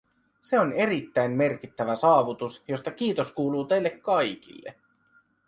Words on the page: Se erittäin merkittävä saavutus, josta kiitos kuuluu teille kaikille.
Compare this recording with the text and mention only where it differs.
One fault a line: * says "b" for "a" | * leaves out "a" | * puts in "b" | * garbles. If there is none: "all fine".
* puts in "on"